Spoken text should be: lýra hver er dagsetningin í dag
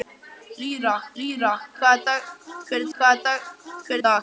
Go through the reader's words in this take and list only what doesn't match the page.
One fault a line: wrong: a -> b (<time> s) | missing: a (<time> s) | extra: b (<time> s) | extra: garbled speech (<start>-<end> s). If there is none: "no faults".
extra: lýra (1.2 s)
wrong: dagsetningin -> hver (3.0 s)